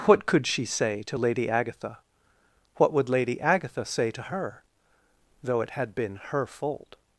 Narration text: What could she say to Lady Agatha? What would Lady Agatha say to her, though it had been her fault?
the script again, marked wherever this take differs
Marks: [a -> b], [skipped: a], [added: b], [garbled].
What could she say to Lady Agatha? What would Lady Agatha say to her, though it had been her fault?